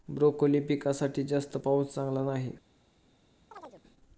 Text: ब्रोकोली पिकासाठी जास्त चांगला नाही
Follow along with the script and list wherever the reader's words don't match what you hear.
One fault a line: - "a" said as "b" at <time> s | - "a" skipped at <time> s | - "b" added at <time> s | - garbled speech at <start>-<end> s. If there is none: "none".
- "पाऊस" added at 1.5 s